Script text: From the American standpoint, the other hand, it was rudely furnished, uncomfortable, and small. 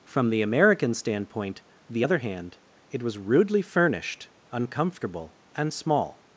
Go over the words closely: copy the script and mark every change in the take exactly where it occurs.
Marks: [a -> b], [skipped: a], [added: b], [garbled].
From the American standpoint, the other hand, it was rudely furnished, uncomfortable, and small.